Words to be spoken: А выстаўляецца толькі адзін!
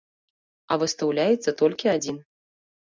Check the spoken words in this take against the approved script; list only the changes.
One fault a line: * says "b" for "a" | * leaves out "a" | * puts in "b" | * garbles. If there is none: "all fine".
all fine